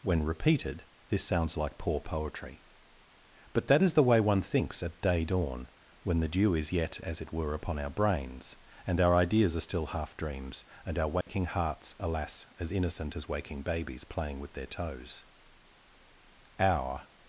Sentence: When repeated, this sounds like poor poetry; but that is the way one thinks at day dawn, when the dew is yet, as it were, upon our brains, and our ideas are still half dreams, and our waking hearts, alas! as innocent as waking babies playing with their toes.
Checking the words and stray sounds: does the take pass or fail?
fail